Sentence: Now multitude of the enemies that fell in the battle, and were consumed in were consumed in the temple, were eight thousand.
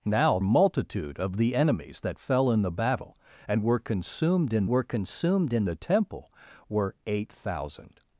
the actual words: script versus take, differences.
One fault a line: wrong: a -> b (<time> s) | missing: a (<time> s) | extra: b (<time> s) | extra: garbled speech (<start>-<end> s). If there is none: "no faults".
no faults